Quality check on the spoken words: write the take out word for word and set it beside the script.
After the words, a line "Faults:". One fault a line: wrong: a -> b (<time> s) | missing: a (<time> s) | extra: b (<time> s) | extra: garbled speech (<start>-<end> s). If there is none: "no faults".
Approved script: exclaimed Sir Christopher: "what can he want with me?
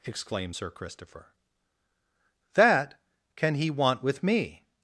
exclaimed Sir Christopher: "that can he want with me?
Faults:
wrong: what -> that (2.5 s)